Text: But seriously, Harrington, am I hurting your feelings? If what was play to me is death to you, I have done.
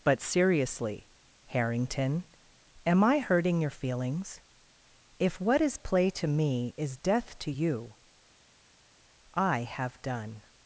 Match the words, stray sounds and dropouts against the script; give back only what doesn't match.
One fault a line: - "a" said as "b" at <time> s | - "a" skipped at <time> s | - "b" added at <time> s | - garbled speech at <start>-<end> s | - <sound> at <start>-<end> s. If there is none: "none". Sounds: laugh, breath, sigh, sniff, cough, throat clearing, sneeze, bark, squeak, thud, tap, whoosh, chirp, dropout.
- "was" said as "is" at 5.6 s